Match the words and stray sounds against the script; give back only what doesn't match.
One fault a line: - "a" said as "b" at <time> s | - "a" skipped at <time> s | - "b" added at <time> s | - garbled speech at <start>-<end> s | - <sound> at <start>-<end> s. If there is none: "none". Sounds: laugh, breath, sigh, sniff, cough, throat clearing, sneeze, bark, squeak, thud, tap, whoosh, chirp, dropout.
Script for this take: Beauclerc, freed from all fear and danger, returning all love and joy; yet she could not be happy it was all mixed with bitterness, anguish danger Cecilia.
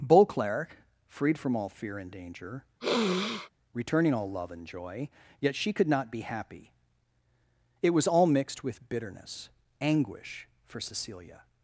- sniff at 2.8-3.5 s
- "danger" said as "for" at 10.7 s